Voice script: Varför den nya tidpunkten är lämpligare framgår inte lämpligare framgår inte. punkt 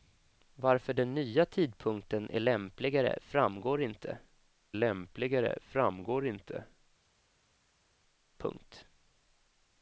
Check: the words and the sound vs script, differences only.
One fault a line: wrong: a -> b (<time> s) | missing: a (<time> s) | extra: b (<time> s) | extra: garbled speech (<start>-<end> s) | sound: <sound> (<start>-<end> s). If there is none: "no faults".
no faults